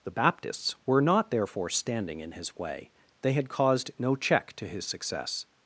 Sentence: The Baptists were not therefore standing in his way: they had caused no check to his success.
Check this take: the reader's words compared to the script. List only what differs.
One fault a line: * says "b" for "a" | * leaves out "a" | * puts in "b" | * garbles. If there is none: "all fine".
all fine